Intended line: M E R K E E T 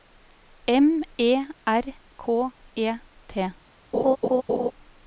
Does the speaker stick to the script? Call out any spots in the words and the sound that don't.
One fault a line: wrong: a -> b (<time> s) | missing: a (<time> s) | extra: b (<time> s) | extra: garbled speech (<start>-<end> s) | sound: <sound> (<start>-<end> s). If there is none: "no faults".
missing: E (2.9 s)
sound: laugh (3.9-4.7 s)